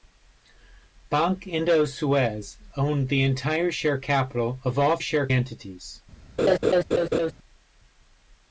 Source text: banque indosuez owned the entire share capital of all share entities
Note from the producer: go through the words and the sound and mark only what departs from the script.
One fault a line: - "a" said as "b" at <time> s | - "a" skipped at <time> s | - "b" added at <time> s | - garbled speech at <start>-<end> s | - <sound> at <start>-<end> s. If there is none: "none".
- laugh at 6.4-7.3 s